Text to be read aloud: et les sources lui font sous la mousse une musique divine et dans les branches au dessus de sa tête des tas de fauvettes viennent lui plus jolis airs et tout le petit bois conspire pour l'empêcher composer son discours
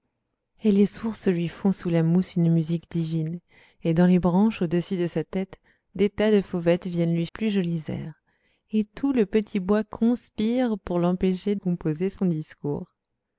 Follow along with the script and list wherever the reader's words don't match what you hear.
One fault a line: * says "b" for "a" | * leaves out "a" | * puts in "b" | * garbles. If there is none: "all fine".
all fine